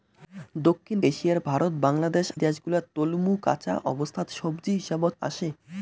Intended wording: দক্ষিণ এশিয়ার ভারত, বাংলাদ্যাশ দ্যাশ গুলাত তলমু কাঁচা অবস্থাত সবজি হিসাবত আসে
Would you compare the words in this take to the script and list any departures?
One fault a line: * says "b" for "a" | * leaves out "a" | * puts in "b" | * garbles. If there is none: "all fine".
all fine